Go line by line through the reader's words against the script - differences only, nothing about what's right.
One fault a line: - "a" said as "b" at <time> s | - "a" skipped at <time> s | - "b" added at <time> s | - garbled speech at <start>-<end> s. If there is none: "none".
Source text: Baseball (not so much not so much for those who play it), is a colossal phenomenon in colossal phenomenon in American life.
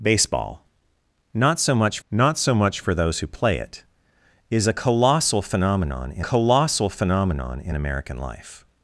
none